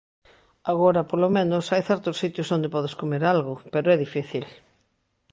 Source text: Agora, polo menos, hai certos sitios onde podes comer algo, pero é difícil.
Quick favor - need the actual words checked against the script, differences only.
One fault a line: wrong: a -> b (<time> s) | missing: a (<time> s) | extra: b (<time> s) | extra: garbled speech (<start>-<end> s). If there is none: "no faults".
no faults